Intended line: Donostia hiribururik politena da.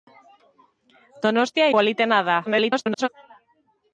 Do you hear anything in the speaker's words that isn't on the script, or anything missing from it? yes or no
yes